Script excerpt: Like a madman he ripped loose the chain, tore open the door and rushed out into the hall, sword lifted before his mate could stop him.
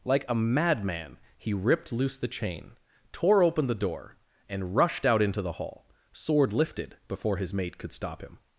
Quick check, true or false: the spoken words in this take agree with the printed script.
true